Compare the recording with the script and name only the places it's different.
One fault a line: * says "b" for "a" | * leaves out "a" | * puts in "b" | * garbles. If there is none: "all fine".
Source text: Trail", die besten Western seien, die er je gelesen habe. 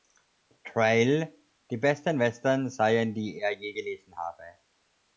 all fine